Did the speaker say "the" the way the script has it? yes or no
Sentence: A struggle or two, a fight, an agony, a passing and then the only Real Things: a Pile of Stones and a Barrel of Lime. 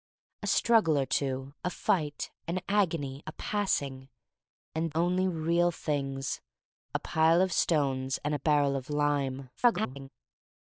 no